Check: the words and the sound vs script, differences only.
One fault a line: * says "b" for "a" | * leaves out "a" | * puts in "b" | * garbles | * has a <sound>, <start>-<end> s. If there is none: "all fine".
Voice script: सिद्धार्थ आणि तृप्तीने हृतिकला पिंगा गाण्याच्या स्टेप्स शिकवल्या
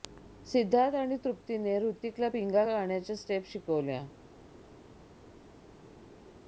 all fine